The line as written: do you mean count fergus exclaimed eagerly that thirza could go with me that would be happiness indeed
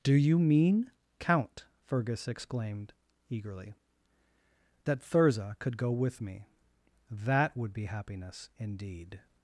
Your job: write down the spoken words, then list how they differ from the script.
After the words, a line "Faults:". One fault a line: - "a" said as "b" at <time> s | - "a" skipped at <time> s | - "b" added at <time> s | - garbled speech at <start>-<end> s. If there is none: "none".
do you mean count fergus exclaimed eagerly that thirza could go with me that would be happiness indeed
Faults:
none